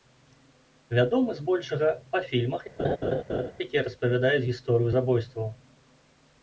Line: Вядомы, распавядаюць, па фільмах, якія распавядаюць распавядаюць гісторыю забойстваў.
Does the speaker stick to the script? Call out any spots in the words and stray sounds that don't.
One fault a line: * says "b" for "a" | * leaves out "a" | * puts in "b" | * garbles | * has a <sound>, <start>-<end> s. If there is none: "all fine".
* says "збольшага" for "распавядаюць"
* has a laugh, 2.8-3.5 s
* leaves out "распавядаюць"